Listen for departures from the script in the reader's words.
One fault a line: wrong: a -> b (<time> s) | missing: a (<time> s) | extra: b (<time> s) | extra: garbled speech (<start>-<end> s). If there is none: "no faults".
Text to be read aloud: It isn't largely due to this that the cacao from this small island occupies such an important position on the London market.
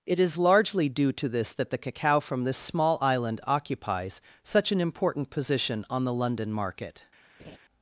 wrong: isn't -> is (0.2 s)